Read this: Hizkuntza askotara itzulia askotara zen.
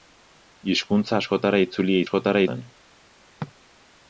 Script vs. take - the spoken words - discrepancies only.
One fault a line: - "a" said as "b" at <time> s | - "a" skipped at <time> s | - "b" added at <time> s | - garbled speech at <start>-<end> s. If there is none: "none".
none